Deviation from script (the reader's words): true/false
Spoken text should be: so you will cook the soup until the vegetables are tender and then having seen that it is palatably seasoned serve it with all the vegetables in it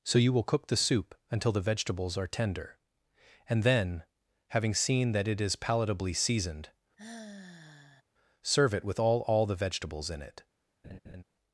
true